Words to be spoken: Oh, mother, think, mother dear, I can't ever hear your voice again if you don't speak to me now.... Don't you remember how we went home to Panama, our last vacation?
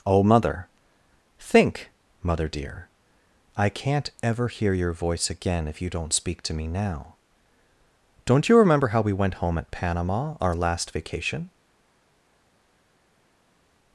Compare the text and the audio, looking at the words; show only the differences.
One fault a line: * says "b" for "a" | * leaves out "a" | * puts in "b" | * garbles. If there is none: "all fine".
* says "at" for "to"